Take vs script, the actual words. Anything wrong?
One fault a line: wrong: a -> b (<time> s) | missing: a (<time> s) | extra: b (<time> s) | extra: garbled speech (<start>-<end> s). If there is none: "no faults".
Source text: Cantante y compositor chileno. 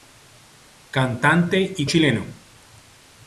missing: compositor (1.9 s)